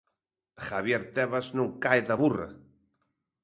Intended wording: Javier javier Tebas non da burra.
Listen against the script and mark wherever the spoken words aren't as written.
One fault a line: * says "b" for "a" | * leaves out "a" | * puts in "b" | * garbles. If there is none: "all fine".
* leaves out "javier"
* puts in "cae"